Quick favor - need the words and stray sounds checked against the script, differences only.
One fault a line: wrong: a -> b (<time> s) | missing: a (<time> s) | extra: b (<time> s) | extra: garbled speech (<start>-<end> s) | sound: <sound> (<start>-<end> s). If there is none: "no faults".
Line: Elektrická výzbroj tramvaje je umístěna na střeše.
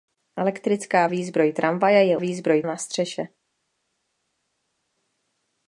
wrong: umístěna -> výzbroj (2.2 s)